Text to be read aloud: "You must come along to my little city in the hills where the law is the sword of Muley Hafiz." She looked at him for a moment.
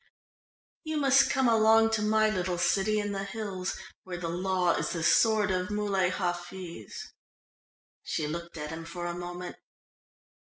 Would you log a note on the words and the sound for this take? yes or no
no